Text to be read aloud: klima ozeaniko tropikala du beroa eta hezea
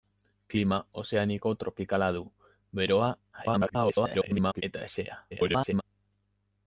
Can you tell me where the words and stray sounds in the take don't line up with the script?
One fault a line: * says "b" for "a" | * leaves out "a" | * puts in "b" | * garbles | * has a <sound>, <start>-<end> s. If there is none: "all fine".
* garbles
* garbles